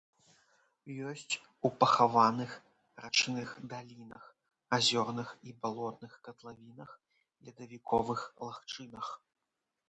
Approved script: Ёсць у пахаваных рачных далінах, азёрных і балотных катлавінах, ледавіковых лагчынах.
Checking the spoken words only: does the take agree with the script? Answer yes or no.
yes